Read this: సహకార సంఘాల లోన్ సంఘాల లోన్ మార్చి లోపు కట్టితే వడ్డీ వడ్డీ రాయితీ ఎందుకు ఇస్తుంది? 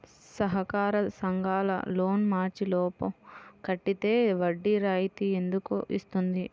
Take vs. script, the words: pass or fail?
fail